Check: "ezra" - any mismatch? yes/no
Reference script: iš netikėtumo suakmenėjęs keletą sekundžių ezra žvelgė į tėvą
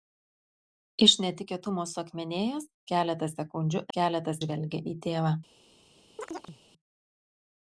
yes